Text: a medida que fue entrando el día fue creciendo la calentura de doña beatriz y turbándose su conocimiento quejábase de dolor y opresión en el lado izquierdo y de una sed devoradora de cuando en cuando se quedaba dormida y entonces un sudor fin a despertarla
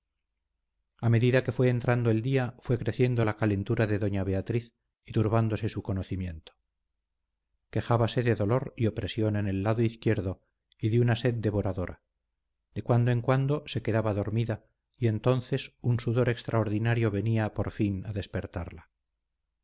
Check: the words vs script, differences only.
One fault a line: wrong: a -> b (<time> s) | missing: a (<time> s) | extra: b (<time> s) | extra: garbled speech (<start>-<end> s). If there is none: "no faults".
extra: extraordinario venía por (16.3 s)